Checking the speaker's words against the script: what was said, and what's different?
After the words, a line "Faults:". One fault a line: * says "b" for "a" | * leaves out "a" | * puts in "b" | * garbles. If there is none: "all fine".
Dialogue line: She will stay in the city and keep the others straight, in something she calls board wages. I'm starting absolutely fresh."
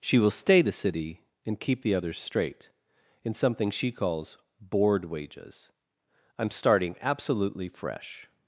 She will stay the city and keep the others straight, in something she calls board wages. I'm starting absolutely fresh."
Faults:
* leaves out "in"